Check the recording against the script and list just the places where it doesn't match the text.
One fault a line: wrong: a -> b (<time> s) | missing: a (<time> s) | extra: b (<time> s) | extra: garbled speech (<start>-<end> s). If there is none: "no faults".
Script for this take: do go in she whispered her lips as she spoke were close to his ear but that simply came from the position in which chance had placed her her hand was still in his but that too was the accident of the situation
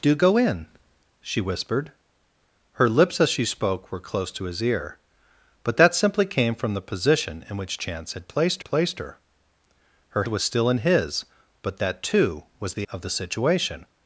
extra: placed (8.6 s)
missing: hand (10.2 s)
missing: accident (12.9 s)